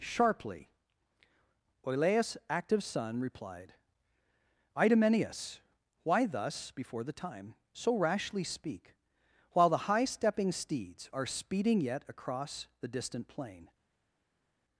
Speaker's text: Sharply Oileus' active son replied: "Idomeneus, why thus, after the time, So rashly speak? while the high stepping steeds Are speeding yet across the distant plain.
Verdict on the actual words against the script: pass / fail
fail